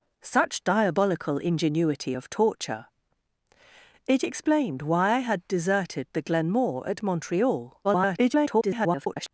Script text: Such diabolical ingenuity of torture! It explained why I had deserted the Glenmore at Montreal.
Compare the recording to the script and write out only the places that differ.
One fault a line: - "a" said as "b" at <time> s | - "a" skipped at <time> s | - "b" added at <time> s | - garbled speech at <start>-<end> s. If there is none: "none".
- garbled speech at 7.8-9.3 s